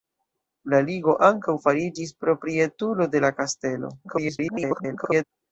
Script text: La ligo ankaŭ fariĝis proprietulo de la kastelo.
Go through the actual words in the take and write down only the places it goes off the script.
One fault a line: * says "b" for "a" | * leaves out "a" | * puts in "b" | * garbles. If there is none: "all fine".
* garbles